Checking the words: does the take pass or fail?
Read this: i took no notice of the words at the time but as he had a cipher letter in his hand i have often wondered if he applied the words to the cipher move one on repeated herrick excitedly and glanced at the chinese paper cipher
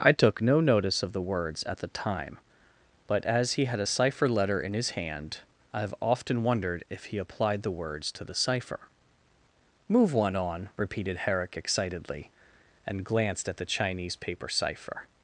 pass